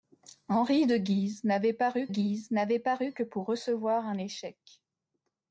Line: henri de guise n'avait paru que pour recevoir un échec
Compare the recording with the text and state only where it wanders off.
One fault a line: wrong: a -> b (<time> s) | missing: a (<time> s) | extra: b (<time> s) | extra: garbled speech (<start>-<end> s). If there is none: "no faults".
extra: guise n'avait paru (2.1 s)